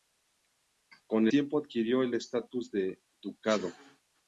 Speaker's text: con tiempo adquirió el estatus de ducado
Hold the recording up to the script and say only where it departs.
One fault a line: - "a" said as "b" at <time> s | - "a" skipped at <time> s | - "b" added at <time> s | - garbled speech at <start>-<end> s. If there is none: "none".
none